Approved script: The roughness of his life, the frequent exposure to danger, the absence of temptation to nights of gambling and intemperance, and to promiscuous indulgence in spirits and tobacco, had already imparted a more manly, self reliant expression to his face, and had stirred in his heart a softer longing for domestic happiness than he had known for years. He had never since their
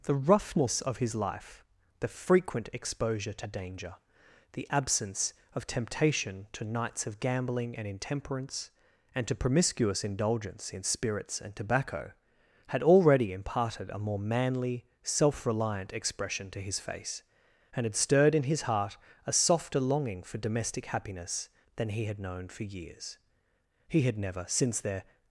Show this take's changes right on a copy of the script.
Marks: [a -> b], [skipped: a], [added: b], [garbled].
The roughness of his life, the frequent exposure to danger, the absence of temptation to nights of gambling and intemperance, and to promiscuous indulgence in spirits and tobacco, had already imparted a more manly, self reliant expression to his face, and had stirred in his heart a softer longing for domestic happiness than he had known for years. He had never since their